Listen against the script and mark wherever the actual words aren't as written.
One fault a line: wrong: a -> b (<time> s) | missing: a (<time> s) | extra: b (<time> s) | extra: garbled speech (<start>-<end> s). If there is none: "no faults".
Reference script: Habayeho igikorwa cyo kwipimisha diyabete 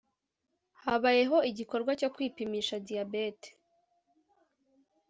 no faults